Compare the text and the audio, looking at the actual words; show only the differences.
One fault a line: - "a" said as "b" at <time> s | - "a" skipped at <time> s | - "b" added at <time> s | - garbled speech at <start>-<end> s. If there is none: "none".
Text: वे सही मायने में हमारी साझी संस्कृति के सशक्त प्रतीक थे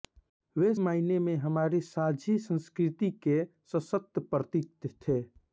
- "सही" skipped at 0.7 s